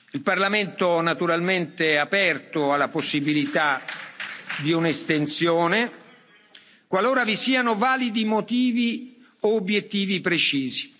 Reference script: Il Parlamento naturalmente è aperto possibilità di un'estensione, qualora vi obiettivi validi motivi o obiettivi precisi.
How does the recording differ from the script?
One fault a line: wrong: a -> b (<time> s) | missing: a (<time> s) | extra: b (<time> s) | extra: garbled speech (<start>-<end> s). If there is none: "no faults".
extra: alla (2.7 s)
wrong: obiettivi -> siano (7.3 s)